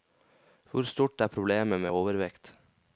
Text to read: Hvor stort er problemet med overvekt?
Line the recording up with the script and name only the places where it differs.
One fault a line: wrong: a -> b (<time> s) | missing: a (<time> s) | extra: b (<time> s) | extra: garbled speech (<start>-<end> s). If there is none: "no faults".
no faults